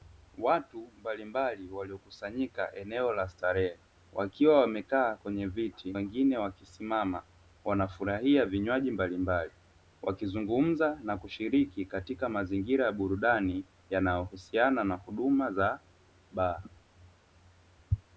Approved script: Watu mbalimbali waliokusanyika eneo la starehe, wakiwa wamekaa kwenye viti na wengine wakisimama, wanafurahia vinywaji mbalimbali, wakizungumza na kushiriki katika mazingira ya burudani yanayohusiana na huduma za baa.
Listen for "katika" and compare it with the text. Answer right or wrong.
right